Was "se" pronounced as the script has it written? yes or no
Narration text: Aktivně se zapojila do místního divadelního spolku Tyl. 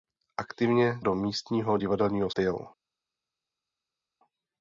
no